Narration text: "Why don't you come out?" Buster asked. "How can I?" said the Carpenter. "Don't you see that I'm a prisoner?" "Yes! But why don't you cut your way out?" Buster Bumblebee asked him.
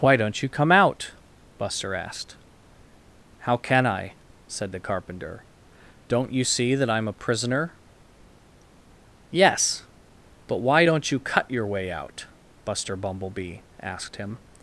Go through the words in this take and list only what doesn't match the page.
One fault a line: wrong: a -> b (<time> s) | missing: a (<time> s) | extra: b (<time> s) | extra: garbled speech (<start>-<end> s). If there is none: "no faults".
no faults